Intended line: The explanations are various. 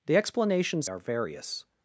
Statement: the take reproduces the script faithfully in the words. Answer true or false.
true